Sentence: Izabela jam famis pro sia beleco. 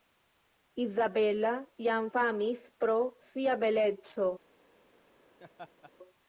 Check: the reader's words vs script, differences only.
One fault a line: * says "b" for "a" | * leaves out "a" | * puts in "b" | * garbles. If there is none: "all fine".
all fine